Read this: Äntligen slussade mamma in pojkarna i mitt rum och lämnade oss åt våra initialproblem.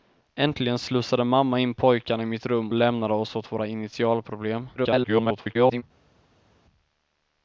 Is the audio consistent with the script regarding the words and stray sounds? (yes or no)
no